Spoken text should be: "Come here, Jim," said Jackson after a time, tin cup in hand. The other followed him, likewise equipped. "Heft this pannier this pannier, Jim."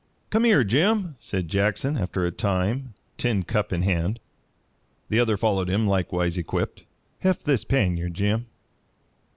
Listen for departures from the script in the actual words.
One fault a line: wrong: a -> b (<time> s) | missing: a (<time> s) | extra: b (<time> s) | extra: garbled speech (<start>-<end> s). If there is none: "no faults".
missing: this pannier (8.1 s)